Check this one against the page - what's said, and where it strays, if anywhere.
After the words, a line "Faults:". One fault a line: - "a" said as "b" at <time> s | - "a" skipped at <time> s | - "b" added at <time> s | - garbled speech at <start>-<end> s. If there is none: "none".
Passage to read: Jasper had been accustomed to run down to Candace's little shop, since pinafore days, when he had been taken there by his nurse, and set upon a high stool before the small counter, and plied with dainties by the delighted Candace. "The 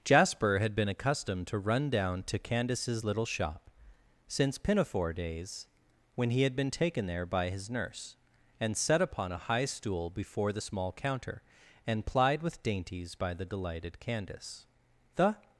Jasper had been accustomed to run down to Candace's little shop, since pinafore days, when he had been taken there by his nurse, and set upon a high stool before the small counter, and plied with dainties by the delighted Candace. "The
Faults:
none